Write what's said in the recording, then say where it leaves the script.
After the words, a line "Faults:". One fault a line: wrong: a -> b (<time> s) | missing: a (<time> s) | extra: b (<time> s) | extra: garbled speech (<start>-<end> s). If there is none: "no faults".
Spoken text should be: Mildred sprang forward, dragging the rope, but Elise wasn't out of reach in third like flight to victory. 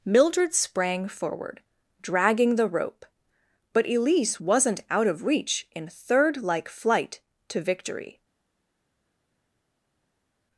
Mildred sprang forward, dragging the rope, but Elise wasn't out of reach in third like flight to victory.
Faults:
no faults